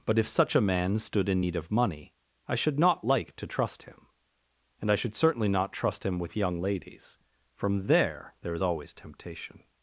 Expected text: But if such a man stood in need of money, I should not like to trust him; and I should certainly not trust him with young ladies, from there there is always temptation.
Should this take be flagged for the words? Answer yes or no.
no